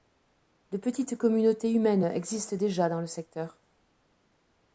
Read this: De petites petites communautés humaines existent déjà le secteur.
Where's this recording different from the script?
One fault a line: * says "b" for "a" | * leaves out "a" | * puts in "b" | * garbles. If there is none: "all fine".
* leaves out "petites"
* puts in "dans"